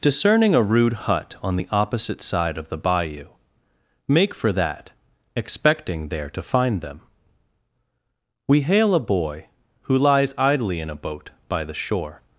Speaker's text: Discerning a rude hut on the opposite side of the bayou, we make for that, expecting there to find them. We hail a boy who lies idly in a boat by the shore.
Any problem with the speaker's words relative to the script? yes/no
yes